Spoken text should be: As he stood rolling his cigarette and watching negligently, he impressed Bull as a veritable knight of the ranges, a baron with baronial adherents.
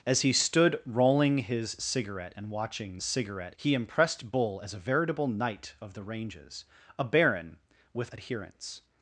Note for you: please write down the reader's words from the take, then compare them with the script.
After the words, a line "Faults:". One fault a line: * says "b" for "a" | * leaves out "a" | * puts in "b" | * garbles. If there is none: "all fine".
As he stood rolling his cigarette and watching cigarette, he impressed Bull as a veritable knight of the ranges, a baron with adherents.
Faults:
* says "cigarette" for "negligently"
* leaves out "baronial"